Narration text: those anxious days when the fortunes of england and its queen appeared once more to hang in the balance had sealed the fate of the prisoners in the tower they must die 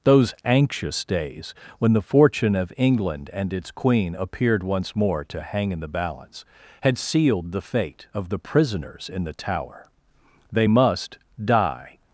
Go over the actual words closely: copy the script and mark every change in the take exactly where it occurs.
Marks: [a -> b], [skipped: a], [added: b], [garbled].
those anxious days when the [fortunes -> fortune] of england and its queen appeared once more to hang in the balance had sealed the fate of the prisoners in the tower they must die